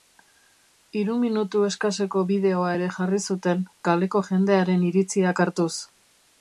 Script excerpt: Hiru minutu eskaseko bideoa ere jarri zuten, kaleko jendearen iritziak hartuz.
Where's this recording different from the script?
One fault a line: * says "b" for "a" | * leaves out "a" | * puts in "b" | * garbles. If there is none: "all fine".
all fine